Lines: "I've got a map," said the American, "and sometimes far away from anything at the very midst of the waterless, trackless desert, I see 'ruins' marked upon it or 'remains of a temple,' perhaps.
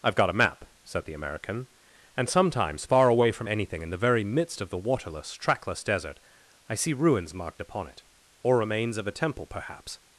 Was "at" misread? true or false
true